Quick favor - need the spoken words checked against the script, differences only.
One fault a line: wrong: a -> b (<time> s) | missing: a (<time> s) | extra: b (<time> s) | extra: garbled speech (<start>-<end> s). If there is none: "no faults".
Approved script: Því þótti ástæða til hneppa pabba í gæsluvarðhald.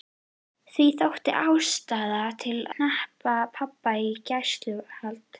no faults